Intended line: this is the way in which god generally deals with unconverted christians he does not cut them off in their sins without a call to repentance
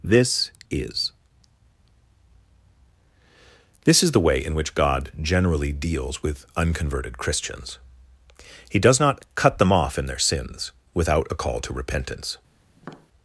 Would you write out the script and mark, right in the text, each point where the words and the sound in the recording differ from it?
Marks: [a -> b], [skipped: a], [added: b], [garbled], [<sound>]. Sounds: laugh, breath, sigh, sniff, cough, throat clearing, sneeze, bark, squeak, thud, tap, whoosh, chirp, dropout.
this is [added: this is] the way in which god generally deals with unconverted christians he does not cut them off in their sins without a call to repentance [tap]